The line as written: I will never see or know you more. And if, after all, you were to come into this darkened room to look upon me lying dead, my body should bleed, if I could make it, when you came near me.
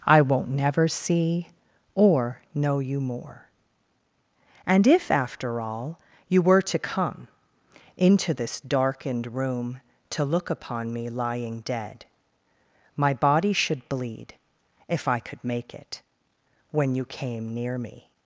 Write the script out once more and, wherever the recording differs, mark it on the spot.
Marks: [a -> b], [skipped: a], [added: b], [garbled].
I [will -> won't] never see or know you more. And if, after all, you were to come into this darkened room to look upon me lying dead, my body should bleed, if I could make it, when you came near me.